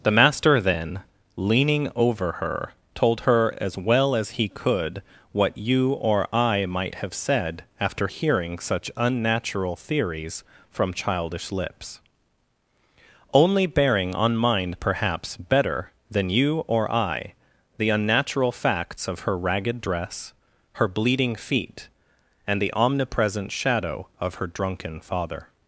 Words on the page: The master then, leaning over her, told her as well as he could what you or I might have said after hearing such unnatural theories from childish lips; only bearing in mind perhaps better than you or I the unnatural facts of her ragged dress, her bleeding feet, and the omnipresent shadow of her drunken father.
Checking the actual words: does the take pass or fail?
fail